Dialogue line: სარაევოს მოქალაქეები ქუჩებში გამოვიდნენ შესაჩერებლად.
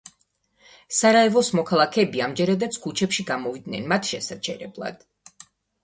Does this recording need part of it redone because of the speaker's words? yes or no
yes